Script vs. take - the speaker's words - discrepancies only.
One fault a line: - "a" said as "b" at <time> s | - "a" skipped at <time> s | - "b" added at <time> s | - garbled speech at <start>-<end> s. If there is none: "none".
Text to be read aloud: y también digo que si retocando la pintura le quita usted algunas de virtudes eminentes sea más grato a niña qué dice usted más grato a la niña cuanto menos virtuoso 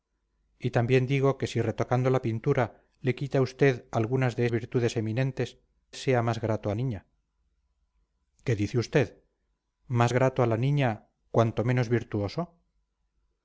none